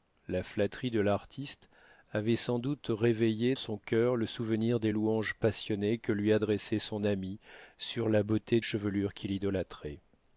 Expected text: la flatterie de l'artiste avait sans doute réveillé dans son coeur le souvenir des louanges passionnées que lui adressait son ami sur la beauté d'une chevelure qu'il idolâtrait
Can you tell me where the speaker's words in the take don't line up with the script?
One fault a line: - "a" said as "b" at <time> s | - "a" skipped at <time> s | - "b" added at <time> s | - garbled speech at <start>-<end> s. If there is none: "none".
- "dans" skipped at 3.5 s
- "d'une" skipped at 8.6 s